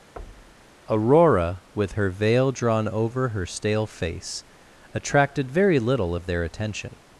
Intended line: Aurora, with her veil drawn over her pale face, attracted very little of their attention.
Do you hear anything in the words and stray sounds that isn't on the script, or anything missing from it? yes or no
yes